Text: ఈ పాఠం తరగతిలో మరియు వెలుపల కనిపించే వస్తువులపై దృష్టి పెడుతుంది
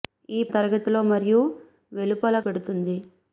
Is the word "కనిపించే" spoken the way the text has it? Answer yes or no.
no